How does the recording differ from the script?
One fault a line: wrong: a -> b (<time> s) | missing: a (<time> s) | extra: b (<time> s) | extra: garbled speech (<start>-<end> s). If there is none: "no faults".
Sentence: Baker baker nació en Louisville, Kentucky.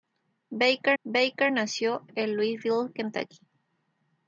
no faults